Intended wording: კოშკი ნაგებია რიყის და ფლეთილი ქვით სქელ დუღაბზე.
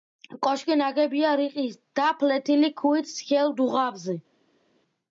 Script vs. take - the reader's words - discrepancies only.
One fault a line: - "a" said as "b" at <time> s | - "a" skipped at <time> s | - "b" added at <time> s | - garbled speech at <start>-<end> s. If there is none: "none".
none